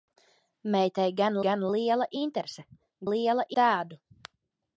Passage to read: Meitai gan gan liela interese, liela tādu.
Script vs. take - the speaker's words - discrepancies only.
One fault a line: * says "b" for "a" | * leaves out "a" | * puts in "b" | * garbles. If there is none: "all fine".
all fine